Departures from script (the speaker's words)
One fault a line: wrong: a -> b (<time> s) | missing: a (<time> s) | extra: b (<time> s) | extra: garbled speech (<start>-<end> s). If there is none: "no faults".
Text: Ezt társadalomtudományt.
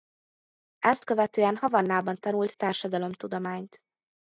extra: követően Havannában tanult (1.0 s)